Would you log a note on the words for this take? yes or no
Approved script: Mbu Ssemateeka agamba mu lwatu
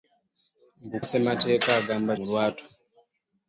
no